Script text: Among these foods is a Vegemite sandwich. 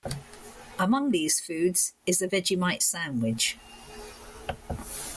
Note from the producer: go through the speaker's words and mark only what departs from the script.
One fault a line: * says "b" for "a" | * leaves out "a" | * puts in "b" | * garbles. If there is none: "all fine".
all fine